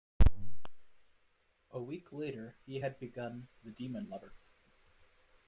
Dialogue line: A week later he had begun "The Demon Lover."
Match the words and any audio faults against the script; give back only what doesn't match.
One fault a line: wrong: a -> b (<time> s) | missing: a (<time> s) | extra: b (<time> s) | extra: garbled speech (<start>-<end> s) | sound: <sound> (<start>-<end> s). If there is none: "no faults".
no faults